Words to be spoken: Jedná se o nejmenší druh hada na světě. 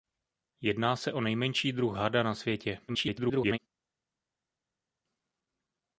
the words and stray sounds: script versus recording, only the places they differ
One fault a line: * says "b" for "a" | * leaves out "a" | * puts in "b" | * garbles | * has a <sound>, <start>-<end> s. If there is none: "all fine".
* garbles